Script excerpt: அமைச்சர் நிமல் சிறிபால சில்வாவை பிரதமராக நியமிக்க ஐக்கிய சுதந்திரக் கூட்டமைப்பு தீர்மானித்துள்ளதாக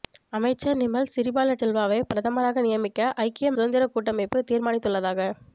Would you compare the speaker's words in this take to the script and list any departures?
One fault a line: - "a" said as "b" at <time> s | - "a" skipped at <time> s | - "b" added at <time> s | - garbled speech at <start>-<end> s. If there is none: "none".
none